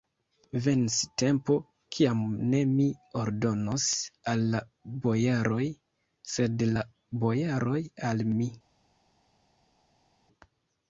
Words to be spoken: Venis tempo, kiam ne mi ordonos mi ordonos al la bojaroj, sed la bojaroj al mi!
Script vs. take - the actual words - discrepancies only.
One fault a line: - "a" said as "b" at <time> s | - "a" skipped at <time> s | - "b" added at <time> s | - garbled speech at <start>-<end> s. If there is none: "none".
- "mi ordonos" skipped at 3.9 s